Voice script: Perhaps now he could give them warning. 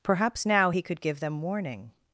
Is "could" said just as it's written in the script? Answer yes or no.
yes